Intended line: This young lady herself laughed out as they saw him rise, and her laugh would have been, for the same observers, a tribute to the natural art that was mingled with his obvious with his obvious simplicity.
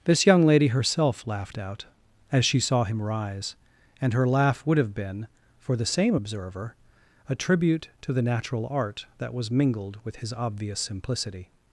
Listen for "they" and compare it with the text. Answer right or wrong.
wrong